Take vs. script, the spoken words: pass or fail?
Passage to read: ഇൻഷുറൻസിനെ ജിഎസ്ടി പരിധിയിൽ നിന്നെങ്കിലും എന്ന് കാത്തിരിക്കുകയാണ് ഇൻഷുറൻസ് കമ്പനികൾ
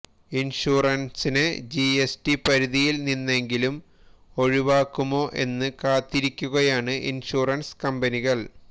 fail